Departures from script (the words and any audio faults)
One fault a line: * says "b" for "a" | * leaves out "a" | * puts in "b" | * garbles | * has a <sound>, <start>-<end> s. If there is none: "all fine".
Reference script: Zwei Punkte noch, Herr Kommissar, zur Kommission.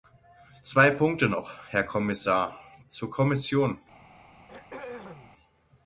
* has a throat clearing, 4.5-5.3 s